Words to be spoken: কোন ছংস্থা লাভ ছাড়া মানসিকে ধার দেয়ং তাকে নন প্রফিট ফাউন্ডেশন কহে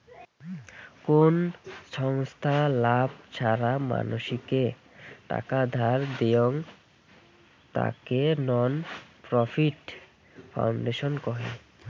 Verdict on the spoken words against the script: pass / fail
fail